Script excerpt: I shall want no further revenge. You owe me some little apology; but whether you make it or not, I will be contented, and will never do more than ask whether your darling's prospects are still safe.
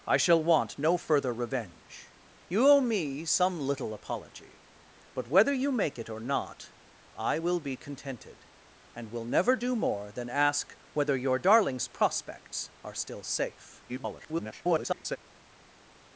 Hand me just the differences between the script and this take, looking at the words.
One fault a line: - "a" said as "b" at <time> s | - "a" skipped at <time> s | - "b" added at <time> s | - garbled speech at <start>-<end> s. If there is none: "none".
- garbled speech at 13.9-15.2 s